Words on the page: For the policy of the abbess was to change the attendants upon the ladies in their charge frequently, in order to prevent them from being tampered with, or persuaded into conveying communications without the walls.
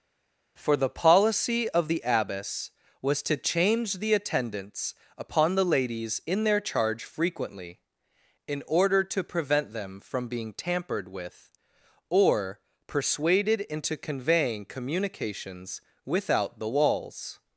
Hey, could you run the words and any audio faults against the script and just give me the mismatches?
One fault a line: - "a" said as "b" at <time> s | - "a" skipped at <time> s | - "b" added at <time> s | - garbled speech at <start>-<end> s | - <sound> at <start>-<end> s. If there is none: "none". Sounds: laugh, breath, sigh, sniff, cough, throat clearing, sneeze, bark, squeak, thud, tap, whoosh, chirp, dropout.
none